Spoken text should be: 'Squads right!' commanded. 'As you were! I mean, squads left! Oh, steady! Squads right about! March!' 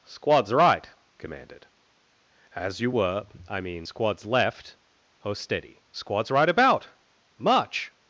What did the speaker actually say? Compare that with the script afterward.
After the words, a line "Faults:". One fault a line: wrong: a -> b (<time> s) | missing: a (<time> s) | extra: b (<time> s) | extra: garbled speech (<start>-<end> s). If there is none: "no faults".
'Squads right!' commanded. 'As you were! I mean, squads left! Oh, steady! Squads right about! March!'
Faults:
no faults